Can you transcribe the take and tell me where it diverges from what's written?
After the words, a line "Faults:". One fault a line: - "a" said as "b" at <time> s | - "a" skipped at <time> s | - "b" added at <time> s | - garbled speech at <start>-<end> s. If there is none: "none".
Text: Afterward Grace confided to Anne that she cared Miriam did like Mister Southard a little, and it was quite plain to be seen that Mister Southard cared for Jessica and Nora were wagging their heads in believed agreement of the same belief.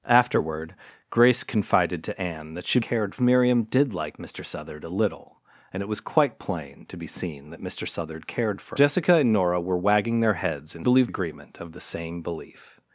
Afterward Grace confided to Anne that she cared Miriam did like Mister Southard a little, and it was quite plain to be seen that Mister Southard cared for Jessica and Nora were wagging their heads in believed agreement of the same belief.
Faults:
none